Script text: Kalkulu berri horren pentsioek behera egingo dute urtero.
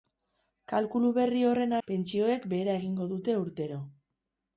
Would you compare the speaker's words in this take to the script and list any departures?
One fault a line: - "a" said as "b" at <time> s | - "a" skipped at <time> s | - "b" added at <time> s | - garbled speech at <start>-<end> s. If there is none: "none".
none